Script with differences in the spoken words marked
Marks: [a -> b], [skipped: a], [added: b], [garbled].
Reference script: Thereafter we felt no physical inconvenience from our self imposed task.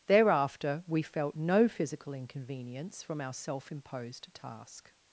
Thereafter we felt no physical inconvenience from our self imposed task.